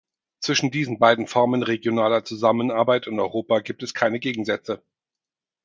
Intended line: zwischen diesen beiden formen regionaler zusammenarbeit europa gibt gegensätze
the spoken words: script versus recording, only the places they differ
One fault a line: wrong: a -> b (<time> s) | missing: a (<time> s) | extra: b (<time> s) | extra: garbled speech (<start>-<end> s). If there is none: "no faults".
extra: in (3.0 s)
extra: es keine (3.8 s)